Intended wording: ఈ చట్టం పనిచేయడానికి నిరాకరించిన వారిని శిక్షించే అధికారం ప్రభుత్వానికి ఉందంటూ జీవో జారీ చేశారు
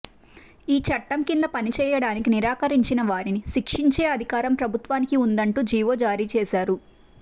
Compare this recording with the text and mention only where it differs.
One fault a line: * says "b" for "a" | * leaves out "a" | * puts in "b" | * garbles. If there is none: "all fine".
* puts in "కింద"